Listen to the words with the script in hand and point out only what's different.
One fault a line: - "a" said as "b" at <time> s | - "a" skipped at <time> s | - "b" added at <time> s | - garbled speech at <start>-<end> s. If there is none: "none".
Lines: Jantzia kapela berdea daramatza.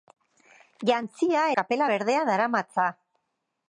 none